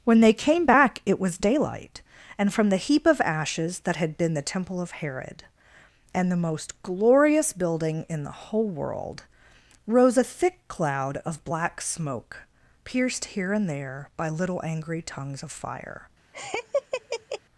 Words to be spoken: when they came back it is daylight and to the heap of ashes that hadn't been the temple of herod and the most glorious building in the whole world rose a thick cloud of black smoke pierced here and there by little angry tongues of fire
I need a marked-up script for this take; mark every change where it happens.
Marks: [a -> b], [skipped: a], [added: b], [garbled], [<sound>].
when they came back it [is -> was] daylight and [to -> from] the heap of ashes that [hadn't -> had] been the temple of herod and the most glorious building in the whole world rose a thick cloud of black smoke pierced here and there by little angry tongues of fire [laugh]